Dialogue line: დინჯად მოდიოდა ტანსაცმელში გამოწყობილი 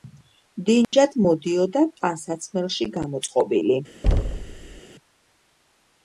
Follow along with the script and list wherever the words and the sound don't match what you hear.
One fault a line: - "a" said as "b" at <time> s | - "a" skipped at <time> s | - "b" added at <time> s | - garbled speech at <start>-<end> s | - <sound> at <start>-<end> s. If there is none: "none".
- dropout at 0.8-0.9 s
- thud at 4.0-4.8 s